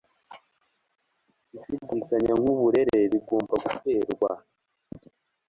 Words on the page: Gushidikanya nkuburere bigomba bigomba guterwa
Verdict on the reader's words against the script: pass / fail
fail